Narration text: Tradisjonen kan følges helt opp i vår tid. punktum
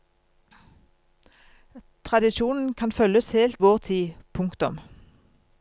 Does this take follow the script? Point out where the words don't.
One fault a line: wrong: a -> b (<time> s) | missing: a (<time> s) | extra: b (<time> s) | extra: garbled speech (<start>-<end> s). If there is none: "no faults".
missing: opp i (3.6 s)